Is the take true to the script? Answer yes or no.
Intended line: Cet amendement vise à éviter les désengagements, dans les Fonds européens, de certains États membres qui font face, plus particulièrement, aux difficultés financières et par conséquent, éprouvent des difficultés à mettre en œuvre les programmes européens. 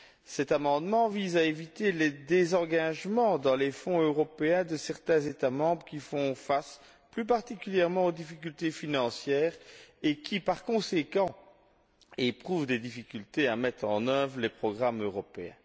no